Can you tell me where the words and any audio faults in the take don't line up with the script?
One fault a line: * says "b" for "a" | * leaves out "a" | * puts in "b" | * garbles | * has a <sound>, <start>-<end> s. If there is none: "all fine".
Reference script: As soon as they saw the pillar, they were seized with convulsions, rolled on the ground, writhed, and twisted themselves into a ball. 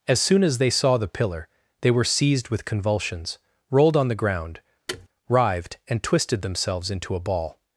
* has a thud, 4.9-5.1 s